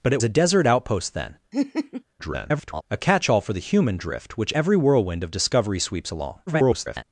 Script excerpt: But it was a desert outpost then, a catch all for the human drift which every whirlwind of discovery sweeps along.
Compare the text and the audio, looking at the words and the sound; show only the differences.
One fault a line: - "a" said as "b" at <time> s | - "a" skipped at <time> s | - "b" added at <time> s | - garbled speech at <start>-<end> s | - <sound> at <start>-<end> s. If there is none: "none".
- "was" skipped at 0.2 s
- laugh at 1.5-2.0 s
- garbled speech at 2.2-2.8 s
- garbled speech at 6.5-7.0 s